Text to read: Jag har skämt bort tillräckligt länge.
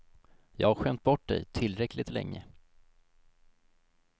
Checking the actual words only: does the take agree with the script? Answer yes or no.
no